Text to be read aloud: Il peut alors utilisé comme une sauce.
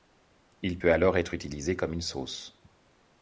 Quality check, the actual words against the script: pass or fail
fail